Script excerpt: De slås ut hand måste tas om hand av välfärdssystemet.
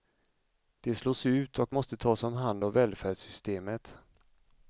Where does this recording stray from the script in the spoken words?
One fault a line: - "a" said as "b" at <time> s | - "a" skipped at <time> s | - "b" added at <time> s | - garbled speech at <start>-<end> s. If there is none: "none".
- "hand" said as "och" at 1.6 s